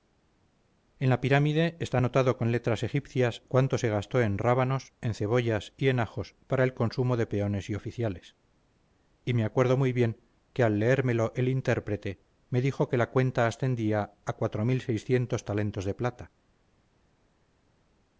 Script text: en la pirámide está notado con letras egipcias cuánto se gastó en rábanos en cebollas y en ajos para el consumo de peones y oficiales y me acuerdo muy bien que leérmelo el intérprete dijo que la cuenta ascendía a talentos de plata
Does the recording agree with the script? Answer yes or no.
no